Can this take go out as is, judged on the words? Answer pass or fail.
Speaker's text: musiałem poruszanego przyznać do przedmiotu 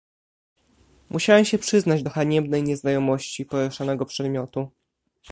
fail